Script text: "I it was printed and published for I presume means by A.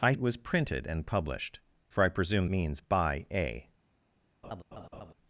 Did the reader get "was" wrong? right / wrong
right